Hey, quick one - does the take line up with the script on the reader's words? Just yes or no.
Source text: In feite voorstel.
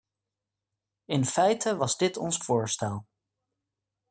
no